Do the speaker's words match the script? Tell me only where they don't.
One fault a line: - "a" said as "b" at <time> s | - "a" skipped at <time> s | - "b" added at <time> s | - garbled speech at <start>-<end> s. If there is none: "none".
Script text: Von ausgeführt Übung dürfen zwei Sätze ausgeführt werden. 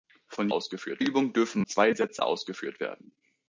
none